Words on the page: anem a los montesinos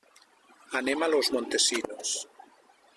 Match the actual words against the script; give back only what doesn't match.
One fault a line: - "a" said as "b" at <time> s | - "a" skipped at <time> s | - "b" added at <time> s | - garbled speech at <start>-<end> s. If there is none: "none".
none